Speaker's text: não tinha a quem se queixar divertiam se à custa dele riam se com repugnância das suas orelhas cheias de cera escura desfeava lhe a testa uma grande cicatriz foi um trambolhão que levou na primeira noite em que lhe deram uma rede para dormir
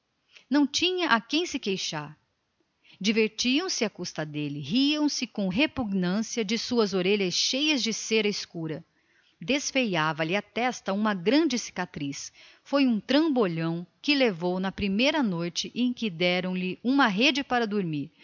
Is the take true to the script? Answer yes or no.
yes